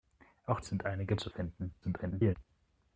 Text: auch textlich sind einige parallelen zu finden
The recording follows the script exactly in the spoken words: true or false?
false